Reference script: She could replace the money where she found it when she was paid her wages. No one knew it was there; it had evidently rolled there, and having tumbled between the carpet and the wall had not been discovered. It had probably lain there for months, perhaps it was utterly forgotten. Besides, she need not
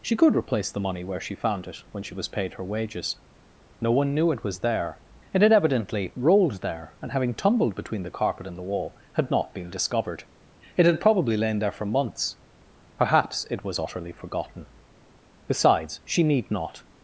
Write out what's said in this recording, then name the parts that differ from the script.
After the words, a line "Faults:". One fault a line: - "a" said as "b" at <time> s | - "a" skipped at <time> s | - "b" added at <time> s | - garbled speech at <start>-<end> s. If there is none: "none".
She could replace the money where she found it when she was paid her wages. No one knew it was there; it had evidently rolled there, and having tumbled between the carpet and the wall had not been discovered. It had probably lain there for months, perhaps it was utterly forgotten. Besides, she need not
Faults:
none